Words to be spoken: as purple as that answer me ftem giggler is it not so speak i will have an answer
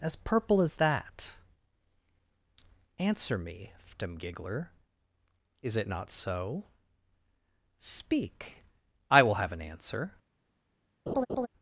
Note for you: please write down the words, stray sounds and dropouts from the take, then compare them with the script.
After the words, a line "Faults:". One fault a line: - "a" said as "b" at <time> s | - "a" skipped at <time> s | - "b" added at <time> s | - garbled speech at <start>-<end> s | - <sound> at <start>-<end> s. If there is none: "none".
as purple as that answer me ftem giggler is it not so speak i will have an answer
Faults:
- laugh at 11.1-11.5 s